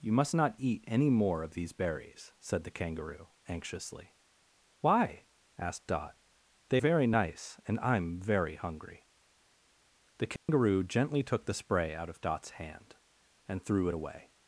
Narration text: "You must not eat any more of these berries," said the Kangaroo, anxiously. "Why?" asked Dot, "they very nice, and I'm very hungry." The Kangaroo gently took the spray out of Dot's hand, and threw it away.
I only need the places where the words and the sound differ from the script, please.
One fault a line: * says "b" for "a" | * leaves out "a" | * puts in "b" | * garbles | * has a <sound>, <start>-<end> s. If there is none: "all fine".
* has a dropout, 10.4-10.5 s